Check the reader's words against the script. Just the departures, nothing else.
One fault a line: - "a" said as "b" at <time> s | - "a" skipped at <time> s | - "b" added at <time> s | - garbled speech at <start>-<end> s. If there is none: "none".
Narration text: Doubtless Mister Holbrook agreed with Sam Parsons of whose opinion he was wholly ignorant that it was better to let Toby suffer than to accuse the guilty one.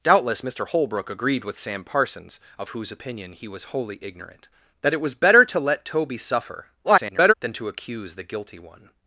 - garbled speech at 6.8-7.3 s